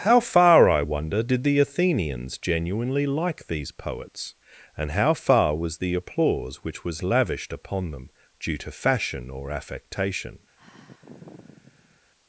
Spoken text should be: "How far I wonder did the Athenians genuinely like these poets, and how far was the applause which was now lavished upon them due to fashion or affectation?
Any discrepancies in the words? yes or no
yes